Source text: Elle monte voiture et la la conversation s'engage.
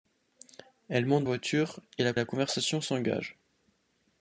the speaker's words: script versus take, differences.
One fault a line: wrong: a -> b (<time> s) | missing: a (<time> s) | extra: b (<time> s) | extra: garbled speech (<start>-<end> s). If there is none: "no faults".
no faults